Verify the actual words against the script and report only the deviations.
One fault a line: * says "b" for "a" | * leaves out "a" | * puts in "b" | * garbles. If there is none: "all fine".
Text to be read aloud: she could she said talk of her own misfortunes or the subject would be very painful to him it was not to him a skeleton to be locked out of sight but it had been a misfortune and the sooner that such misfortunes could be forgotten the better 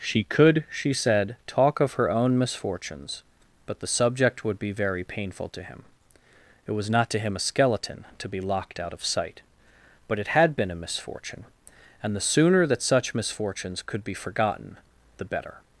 * says "but" for "or"